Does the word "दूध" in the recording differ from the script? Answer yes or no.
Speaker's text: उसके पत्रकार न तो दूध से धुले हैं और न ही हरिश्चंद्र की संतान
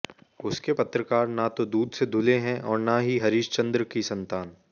no